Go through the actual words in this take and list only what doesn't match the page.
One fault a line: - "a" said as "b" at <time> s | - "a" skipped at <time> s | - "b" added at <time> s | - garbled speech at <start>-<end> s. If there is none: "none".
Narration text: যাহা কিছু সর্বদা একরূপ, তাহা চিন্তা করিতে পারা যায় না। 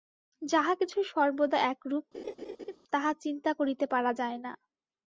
none